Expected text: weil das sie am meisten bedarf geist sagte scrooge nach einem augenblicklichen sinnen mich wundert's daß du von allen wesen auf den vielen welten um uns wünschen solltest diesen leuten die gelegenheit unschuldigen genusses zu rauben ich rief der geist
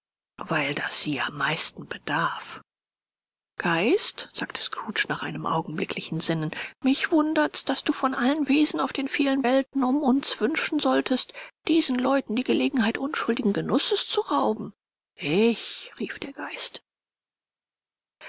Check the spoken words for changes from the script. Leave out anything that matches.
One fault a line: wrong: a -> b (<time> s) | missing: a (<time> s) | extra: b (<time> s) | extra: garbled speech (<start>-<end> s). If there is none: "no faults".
no faults